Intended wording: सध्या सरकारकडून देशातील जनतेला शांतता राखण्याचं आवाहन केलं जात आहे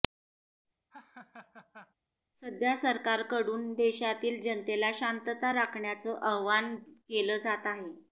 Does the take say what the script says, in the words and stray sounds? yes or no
no